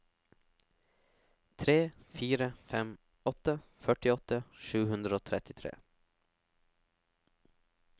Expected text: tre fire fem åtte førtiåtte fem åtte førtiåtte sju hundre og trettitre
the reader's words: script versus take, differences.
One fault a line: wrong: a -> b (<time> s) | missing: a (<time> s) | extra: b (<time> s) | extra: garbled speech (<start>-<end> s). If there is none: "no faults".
missing: fem åtte førtiåtte (4.4 s)